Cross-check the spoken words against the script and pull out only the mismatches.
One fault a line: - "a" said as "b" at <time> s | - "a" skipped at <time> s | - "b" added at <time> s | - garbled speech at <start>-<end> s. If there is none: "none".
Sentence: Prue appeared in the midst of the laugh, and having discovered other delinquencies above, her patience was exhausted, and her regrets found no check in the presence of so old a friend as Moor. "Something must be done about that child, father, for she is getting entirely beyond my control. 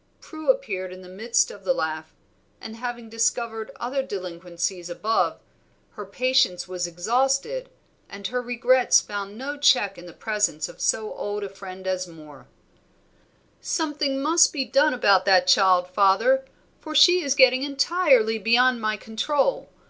none